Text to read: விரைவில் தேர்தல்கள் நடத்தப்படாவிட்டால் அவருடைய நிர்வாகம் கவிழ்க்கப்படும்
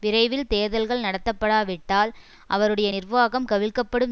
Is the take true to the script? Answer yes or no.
yes